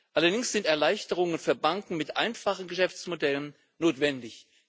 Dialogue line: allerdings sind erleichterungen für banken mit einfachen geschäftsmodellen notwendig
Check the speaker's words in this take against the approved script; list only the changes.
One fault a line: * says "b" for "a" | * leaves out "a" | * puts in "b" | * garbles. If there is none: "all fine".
all fine